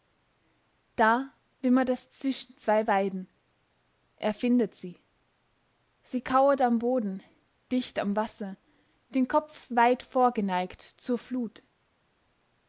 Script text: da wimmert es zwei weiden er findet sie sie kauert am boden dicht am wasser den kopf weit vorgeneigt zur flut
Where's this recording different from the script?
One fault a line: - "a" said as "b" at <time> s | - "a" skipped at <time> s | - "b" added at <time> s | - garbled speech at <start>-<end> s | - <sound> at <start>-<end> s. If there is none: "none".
- "zwischen" added at 2.1 s